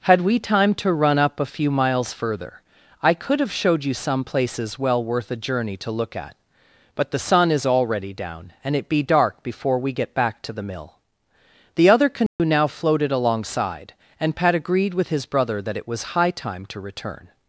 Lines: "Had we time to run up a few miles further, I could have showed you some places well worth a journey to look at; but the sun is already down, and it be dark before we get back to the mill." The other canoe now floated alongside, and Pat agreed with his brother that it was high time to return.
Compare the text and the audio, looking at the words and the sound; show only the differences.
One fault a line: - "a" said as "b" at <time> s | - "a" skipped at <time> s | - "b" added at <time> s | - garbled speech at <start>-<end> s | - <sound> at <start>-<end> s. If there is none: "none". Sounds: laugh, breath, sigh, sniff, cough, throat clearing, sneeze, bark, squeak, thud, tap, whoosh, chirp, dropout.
- dropout at 12.3-12.4 s